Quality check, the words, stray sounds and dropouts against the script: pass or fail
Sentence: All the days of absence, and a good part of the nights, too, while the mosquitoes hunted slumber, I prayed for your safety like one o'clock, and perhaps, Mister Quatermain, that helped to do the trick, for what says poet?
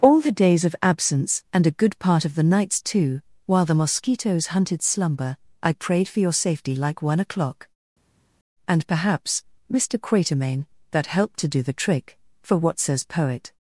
pass